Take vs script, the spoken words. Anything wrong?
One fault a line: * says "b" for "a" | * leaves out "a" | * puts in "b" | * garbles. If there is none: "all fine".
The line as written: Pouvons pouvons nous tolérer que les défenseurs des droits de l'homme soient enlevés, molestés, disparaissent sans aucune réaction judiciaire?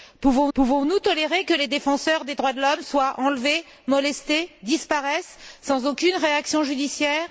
all fine